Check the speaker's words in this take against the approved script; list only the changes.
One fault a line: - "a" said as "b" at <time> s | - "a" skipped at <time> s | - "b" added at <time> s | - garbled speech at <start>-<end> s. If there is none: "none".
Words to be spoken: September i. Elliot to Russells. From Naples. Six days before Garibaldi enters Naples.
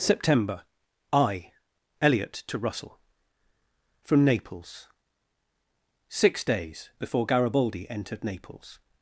- "Russells" said as "Russell" at 2.6 s
- "enters" said as "entered" at 7.9 s